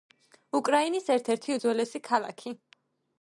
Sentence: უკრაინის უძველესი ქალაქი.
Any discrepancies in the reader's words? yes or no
yes